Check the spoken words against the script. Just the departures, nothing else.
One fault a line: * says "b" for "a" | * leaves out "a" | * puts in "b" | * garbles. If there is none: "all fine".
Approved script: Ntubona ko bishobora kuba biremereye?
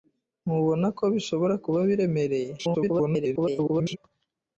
* garbles